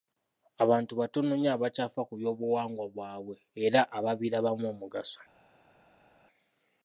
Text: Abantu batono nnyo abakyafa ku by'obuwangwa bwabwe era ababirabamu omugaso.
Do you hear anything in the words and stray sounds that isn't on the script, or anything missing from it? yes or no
no